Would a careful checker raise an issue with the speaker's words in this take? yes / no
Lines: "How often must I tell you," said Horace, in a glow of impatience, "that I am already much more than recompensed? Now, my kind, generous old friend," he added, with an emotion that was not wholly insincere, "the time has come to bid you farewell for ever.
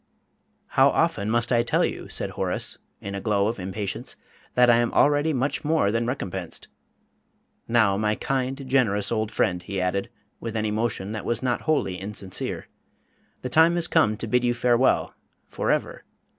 no